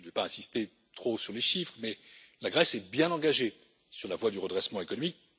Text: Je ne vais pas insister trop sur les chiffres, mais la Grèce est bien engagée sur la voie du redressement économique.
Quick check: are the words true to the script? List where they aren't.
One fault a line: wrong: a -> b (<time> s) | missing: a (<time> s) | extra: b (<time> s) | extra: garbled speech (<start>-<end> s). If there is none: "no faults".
no faults